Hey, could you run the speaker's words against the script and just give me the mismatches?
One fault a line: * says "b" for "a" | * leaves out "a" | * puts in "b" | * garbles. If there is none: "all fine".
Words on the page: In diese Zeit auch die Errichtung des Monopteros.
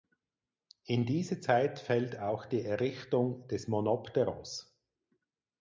* puts in "fällt"